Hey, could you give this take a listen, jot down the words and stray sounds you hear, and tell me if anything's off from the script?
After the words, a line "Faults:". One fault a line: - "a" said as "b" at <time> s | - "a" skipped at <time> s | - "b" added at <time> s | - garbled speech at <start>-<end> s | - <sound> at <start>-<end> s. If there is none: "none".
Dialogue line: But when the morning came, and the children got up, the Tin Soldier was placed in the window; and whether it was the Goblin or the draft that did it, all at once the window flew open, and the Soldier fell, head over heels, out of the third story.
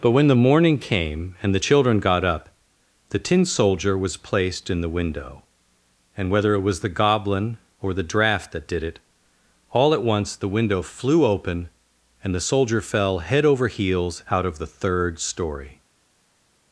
But when the morning came, and the children got up, the Tin Soldier was placed in the window; and whether it was the Goblin or the draft that did it, all at once the window flew open, and the Soldier fell, head over heels, out of the third story.
Faults:
none